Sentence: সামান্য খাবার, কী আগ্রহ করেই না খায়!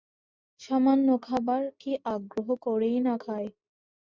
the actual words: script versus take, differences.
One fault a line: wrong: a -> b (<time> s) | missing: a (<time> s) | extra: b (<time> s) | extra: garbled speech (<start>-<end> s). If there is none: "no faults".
no faults